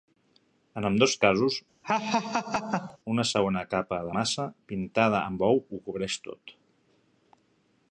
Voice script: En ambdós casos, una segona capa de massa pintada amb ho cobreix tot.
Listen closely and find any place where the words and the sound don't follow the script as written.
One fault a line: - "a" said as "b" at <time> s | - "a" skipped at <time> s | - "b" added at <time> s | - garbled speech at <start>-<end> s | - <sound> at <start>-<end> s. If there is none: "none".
- laugh at 1.8-3.0 s
- "ou" added at 5.5 s